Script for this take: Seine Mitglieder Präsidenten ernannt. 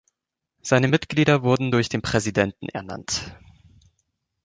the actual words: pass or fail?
fail